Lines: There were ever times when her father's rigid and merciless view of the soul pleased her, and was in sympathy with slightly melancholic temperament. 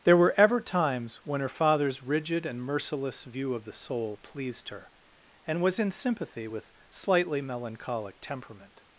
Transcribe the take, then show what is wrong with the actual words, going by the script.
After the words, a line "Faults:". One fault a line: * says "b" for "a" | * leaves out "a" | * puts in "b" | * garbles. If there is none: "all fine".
There were ever times when her father's rigid and merciless view of the soul pleased her, and was in sympathy with slightly melancholic temperament.
Faults:
all fine